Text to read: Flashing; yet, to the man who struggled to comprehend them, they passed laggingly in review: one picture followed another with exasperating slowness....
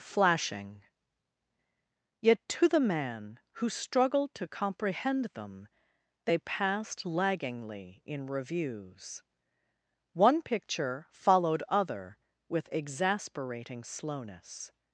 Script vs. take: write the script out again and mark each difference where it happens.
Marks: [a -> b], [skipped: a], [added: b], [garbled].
Flashing; yet, to the man who struggled to comprehend them, they passed laggingly in [review: -> reviews] one picture followed [another -> other] with exasperating slowness....